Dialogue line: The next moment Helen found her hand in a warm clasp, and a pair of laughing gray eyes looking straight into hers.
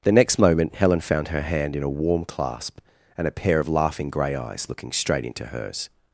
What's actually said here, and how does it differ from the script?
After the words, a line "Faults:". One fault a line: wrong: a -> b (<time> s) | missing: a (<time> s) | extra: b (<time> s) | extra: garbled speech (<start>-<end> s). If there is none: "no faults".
The next moment Helen found her hand in a warm clasp, and a pair of laughing gray eyes looking straight into hers.
Faults:
no faults